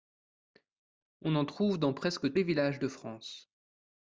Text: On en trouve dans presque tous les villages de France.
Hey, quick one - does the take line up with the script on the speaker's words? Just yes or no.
no